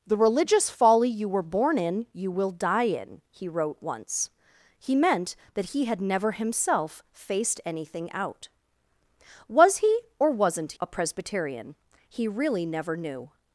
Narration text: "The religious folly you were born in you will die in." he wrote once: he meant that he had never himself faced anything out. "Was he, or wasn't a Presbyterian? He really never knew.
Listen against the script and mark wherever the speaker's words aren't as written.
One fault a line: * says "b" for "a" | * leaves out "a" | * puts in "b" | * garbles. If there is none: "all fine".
all fine